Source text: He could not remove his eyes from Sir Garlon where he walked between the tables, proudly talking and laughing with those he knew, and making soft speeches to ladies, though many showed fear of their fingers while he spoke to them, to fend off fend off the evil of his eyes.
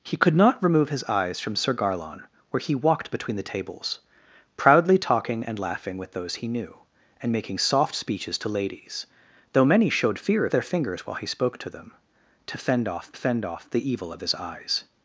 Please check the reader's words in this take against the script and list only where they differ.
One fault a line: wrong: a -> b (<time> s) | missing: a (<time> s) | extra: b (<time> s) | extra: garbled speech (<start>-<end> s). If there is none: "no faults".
no faults